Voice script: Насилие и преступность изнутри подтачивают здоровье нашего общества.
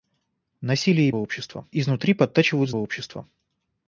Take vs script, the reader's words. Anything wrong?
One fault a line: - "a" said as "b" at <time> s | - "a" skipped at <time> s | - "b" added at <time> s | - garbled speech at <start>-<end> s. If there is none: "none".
- "преступность" said as "общества" at 1.1 s
- "здоровье нашего" skipped at 2.7 s